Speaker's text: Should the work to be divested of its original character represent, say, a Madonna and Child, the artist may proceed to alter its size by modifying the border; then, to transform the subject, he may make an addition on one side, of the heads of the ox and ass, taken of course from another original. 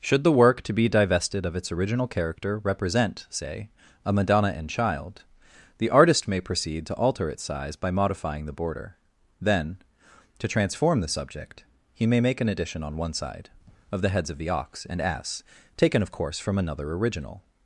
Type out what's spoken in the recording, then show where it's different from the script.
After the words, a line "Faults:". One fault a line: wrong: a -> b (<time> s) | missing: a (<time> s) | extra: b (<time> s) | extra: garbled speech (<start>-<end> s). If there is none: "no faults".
Should the work to be divested of its original character represent, say, a Madonna and Child, the artist may proceed to alter its size by modifying the border; then, to transform the subject, he may make an addition on one side, of the heads of the ox and ass, taken of course from another original.
Faults:
no faults